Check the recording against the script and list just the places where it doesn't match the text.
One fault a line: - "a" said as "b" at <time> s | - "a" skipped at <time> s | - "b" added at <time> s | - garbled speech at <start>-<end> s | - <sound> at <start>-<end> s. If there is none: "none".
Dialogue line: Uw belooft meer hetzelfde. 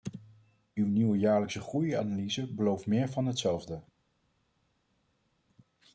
- "nieuwe jaarlijkse groeianalyse" added at 0.9 s
- "van" added at 3.1 s